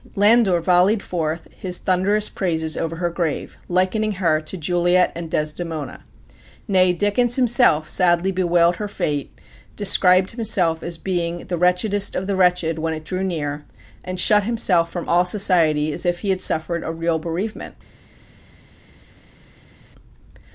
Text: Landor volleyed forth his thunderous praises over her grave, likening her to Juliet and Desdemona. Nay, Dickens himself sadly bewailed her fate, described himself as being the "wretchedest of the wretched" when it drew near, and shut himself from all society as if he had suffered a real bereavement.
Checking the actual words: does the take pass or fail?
pass